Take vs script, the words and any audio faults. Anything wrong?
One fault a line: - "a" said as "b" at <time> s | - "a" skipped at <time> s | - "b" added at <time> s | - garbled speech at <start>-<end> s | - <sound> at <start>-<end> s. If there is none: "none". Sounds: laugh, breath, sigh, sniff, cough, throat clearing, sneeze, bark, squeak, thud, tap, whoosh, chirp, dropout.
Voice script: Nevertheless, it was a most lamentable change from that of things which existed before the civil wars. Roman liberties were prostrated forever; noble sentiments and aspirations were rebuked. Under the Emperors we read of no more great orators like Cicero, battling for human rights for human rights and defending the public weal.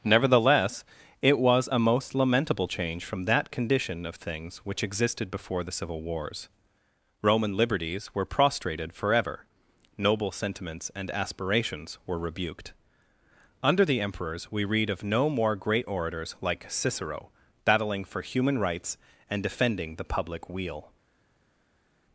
- "condition" added at 3.5 s
- "for human rights" skipped at 19.0 s